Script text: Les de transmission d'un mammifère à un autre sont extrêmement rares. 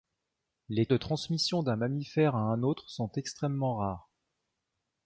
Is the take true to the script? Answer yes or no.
yes